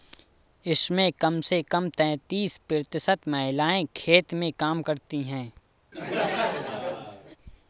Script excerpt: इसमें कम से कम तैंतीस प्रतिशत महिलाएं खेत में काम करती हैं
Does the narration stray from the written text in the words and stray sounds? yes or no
yes